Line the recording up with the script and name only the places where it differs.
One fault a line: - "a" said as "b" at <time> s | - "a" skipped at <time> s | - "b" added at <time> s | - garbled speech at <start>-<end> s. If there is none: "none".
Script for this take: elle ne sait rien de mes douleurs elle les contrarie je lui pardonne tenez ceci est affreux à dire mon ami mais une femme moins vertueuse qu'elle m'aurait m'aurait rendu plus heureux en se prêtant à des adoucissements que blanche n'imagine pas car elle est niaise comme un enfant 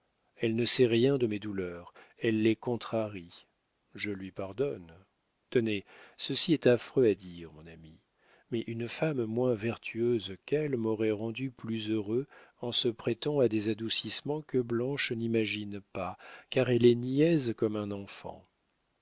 - "m'aurait" skipped at 11.1 s